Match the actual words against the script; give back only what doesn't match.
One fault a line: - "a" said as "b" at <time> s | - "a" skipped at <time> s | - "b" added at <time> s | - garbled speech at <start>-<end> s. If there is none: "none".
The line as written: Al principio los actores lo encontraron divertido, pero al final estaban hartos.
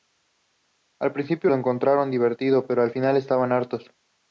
- "los actores" skipped at 1.5 s